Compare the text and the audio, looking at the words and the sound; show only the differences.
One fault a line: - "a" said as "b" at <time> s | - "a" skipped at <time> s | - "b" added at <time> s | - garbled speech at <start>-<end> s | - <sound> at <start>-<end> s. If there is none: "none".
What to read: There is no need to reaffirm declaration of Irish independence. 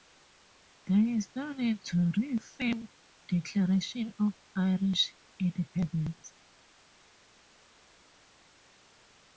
none